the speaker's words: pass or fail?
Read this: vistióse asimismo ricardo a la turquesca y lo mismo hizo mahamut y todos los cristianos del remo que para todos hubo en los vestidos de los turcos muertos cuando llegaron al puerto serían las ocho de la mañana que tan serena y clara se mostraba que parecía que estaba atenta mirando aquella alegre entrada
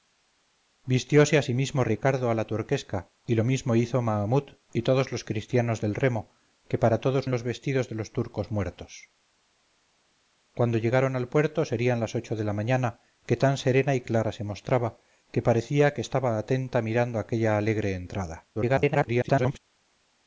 fail